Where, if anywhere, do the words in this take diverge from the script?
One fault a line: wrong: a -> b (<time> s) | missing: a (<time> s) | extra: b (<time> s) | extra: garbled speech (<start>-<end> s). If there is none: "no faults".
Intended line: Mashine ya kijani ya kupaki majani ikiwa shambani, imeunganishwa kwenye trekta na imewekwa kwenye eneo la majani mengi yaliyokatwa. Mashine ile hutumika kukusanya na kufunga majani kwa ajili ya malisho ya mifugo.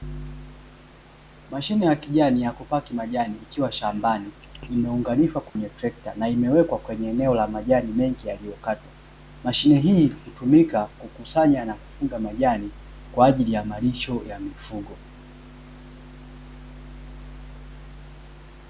wrong: ile -> hii (9.8 s)